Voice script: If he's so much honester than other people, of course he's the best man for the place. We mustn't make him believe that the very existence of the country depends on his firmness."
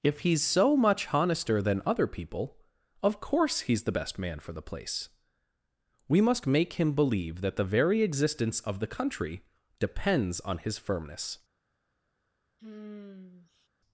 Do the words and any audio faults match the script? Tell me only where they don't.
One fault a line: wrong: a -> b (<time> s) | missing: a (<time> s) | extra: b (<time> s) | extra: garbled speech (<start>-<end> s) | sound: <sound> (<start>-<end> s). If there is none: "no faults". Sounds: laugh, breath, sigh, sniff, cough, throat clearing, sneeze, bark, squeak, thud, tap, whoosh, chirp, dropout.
wrong: mustn't -> must (6.2 s)
sound: sigh (12.6-13.7 s)